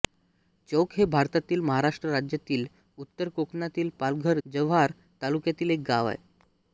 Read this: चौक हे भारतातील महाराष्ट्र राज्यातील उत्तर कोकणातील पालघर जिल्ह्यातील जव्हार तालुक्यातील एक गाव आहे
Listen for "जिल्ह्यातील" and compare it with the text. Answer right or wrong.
wrong